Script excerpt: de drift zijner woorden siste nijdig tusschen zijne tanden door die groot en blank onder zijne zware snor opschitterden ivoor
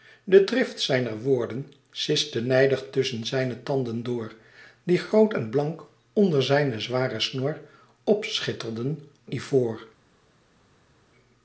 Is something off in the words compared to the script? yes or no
no